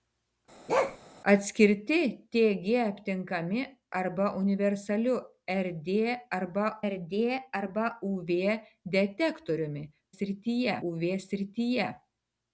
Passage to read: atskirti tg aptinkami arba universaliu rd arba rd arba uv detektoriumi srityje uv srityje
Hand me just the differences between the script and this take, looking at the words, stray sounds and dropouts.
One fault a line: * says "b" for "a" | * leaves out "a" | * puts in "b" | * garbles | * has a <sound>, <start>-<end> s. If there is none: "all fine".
* has a bark, 0.7-1.0 s